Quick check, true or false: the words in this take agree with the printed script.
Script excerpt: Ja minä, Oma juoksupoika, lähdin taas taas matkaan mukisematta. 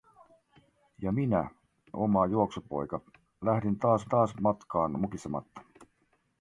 true